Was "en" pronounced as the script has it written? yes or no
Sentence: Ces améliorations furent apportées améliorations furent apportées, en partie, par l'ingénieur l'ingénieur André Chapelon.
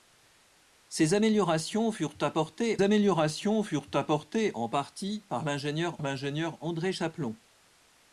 yes